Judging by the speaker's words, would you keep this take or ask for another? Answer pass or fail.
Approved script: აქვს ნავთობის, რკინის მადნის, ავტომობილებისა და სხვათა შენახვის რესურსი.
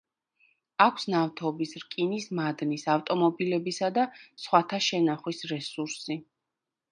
pass